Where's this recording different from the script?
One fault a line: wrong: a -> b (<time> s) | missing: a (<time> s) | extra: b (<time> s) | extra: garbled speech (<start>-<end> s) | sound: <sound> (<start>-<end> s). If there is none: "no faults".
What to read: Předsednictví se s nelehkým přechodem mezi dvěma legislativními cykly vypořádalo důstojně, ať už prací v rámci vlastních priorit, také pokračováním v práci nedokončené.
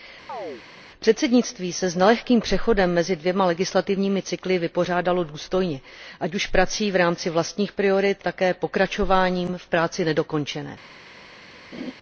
sound: chirp (0.3-0.6 s)
sound: laugh (11.7-11.9 s)